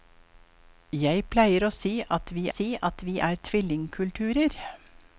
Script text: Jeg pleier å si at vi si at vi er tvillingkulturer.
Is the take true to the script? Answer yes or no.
yes